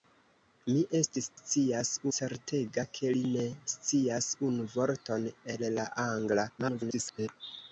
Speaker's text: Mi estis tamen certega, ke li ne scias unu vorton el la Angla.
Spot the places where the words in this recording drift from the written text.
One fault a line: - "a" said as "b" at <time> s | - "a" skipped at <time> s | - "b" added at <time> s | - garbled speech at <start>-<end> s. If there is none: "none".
- "tamen" said as "scias" at 1.4 s
- garbled speech at 6.6-7.3 s